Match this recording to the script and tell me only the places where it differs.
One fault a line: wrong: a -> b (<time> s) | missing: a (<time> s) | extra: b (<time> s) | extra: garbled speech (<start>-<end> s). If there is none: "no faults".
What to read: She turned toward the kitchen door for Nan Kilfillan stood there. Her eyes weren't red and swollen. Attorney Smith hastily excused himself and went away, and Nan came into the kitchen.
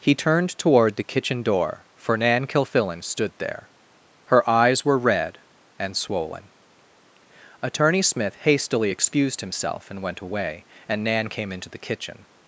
wrong: She -> He (0.0 s)
wrong: weren't -> were (4.8 s)